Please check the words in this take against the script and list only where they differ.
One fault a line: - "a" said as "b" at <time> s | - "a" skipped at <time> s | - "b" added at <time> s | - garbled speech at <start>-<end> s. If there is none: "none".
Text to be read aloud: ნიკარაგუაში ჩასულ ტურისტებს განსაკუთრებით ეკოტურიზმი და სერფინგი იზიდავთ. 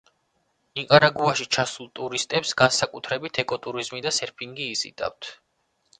none